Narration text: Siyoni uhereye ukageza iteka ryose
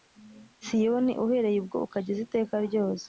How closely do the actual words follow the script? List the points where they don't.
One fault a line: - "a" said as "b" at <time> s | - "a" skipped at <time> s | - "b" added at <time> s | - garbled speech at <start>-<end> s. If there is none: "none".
- "ubwo" added at 1.6 s